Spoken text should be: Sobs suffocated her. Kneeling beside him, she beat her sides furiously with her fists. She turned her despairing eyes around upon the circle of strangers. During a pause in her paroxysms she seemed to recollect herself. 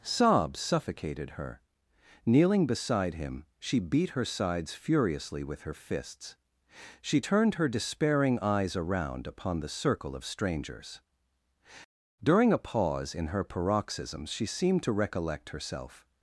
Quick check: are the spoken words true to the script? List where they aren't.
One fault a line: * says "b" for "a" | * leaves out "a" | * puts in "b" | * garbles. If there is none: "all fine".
all fine